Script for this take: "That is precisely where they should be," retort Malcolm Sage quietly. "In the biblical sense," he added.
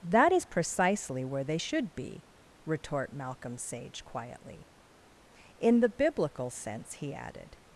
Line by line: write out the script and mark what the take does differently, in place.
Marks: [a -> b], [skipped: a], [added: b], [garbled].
"That is precisely where they should be," retort Malcolm Sage quietly. "In the biblical sense," he added.